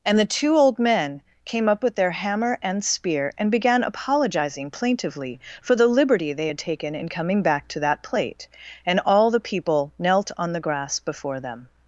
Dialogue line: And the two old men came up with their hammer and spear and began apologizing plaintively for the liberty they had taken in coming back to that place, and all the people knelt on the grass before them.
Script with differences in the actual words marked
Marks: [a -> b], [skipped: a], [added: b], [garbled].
And the two old men came up with their hammer and spear and began apologizing plaintively for the liberty they had taken in coming back to that [place, -> plate] and all the people knelt on the grass before them.